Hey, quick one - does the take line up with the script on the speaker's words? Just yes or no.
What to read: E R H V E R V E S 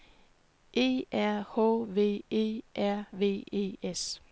yes